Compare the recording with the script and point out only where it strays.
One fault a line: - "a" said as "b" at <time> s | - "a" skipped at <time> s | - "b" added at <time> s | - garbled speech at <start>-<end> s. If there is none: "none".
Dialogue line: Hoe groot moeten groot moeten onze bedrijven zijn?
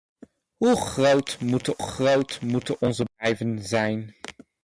none